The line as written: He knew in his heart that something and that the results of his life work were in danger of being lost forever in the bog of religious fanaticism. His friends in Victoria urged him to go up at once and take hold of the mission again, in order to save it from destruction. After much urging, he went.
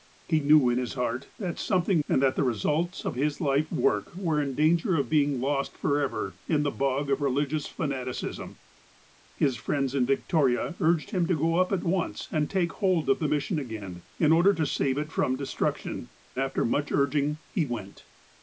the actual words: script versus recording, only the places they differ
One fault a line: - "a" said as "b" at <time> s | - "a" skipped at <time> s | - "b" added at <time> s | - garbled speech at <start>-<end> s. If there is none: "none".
none